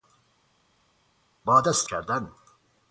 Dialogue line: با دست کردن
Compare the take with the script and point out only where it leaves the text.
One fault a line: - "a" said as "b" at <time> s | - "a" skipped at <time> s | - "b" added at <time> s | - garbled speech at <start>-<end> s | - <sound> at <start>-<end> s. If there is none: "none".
none